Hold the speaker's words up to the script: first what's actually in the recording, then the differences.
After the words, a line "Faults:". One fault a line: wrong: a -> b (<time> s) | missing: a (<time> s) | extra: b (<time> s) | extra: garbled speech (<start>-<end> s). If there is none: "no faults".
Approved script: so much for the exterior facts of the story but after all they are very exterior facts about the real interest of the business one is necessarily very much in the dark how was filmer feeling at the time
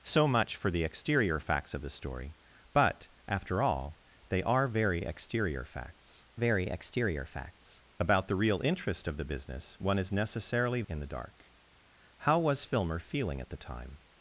so much for the exterior facts of the story but after all they are very exterior facts very exterior facts about the real interest of the business one is necessarily in the dark how was filmer feeling at the time
Faults:
extra: very exterior facts (6.3 s)
missing: very much (10.8 s)